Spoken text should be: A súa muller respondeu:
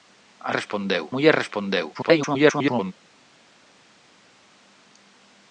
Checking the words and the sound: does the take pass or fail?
fail